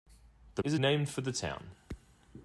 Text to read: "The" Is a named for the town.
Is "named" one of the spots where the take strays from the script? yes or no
no